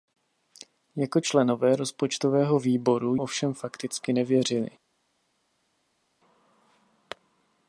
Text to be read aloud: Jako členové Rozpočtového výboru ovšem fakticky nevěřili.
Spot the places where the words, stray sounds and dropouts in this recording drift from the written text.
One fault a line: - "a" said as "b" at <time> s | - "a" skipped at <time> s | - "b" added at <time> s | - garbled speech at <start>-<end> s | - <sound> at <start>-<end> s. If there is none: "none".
none